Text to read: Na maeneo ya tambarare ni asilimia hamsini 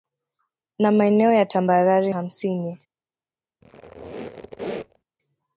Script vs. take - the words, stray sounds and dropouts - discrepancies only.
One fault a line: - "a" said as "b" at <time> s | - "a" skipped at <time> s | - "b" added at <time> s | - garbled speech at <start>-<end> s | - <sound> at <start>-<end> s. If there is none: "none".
- "ni asilimia" skipped at 2.1 s
- squeak at 3.6-5.0 s